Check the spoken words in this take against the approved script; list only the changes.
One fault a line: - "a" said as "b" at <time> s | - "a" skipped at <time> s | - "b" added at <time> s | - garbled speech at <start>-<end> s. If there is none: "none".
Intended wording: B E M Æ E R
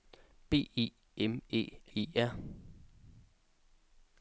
none